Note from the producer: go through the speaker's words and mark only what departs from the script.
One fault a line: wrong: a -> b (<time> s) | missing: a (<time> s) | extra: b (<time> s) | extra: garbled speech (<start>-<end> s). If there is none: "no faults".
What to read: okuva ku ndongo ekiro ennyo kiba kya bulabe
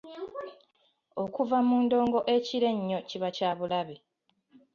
wrong: ku -> mu (1.7 s)